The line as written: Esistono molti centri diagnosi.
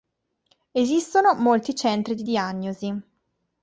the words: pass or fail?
fail